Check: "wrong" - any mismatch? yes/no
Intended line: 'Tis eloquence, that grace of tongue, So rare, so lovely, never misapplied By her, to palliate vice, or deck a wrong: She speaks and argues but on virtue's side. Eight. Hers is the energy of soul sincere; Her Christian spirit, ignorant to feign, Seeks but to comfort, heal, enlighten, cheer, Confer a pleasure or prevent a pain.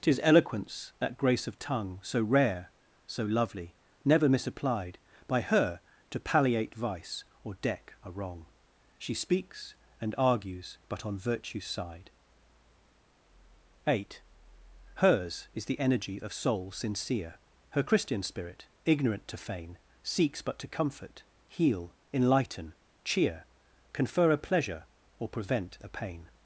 no